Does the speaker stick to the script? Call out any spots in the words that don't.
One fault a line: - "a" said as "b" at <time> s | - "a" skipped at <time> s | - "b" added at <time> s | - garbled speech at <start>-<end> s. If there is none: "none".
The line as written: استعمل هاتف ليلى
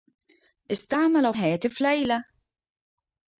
none